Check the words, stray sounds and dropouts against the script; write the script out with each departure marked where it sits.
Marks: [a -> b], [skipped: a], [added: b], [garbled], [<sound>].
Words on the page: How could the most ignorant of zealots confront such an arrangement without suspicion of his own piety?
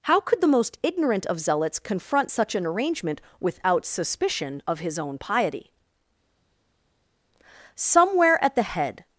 How could the most ignorant of zealots confront such an arrangement without suspicion of his own piety? [added: Somewhere at the head]